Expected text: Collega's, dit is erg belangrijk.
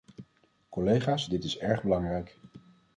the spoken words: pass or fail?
pass